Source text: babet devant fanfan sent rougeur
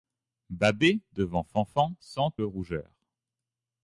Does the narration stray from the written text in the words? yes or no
no